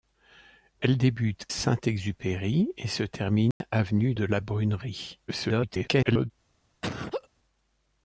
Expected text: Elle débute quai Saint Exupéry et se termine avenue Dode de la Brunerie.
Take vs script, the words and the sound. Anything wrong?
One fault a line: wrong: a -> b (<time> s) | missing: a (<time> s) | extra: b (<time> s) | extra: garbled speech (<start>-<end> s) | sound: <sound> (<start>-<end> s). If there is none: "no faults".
missing: quai (1.4 s)
sound: dropout (3.5-3.6 s)
missing: Dode (4.1 s)
extra: garbled speech (5.3-6.3 s)
sound: laugh (6.8-7.3 s)